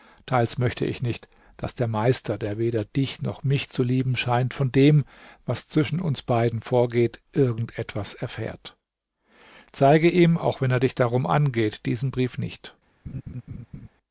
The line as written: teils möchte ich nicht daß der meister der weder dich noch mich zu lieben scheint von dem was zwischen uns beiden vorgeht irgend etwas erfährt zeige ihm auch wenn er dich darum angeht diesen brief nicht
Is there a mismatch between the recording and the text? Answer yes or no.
no